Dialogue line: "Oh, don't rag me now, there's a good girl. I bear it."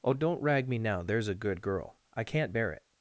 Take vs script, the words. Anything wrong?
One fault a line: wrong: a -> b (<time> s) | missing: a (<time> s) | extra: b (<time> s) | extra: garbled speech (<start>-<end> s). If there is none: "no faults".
extra: can't (2.2 s)